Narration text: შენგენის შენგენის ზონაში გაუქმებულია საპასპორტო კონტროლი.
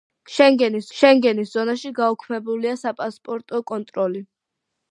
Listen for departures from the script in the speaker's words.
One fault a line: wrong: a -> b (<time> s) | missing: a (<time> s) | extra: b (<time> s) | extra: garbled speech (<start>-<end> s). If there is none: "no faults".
no faults